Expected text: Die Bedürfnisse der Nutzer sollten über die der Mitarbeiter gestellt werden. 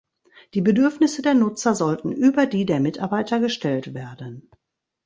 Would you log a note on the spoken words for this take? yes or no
no